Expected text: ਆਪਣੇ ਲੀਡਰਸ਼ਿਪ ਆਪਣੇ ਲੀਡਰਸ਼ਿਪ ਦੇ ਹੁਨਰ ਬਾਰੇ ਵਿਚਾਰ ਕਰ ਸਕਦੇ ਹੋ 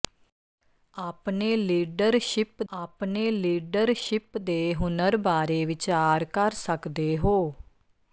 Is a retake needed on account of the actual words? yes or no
no